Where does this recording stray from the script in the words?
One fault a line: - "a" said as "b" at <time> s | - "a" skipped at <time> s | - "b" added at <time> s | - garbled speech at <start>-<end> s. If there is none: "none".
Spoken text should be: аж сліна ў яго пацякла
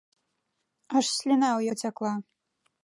- "яго" skipped at 1.6 s